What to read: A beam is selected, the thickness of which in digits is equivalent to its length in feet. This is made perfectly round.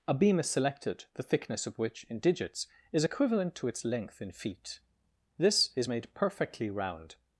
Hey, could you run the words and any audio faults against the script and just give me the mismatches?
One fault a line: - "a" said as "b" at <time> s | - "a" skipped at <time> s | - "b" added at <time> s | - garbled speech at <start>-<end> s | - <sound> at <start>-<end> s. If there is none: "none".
none